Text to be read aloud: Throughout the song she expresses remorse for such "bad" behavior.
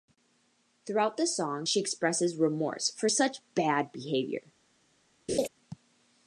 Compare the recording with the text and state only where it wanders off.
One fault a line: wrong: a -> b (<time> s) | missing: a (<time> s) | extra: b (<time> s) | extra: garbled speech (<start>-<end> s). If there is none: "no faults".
no faults